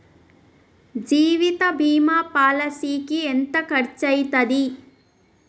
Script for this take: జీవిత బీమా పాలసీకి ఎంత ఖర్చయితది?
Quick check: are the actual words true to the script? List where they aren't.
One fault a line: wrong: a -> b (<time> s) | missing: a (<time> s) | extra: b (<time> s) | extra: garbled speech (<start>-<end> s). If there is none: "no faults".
no faults